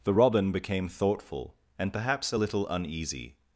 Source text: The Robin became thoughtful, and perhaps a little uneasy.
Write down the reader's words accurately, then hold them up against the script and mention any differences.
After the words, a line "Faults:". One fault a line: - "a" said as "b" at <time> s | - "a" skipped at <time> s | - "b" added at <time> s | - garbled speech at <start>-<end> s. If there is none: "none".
The Robin became thoughtful, and perhaps a little uneasy.
Faults:
none